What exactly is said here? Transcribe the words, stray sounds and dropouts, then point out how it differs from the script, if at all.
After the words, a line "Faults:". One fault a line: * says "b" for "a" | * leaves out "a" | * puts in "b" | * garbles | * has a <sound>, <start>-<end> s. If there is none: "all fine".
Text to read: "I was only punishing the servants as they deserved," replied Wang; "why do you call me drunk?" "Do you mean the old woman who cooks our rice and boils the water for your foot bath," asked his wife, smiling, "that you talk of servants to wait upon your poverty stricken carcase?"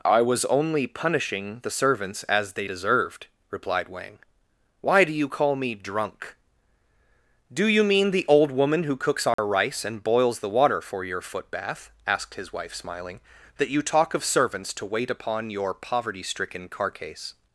"I was only punishing the servants as they deserved," replied Wang; "why do you call me drunk?" "Do you mean the old woman who cooks our rice and boils the water for your foot bath," asked his wife, smiling, "that you talk of servants to wait upon your poverty stricken carcase?"
Faults:
* has a dropout, 9.3-9.4 s